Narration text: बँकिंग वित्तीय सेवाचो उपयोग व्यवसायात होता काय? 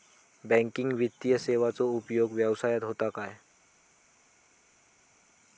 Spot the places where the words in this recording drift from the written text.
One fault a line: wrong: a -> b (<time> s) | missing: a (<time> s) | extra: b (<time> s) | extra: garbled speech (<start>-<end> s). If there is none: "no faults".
no faults